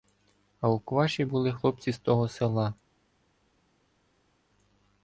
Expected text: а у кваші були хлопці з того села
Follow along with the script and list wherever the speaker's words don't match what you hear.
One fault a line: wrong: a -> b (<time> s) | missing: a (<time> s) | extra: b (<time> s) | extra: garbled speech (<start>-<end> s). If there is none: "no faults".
no faults